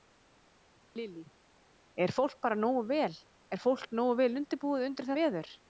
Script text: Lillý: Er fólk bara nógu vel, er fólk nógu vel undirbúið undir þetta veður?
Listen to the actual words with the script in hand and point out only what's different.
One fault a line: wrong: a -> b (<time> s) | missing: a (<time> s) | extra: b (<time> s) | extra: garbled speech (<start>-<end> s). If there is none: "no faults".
missing: þetta (5.1 s)